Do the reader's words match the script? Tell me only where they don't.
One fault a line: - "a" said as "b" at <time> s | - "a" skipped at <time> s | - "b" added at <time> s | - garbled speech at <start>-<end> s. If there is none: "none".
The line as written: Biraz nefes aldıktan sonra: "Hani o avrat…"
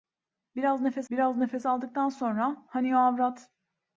- "biraz nefes" added at 1.1 s